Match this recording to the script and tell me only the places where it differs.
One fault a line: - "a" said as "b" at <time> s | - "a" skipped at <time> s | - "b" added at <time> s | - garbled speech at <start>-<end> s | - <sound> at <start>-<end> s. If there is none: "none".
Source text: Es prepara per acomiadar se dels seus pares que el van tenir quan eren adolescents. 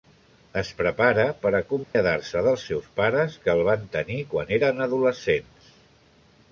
- dropout at 1.8-2.0 s